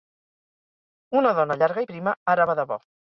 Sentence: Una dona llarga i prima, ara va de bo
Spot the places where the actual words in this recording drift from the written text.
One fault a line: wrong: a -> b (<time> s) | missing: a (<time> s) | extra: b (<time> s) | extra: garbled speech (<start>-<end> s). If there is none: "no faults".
no faults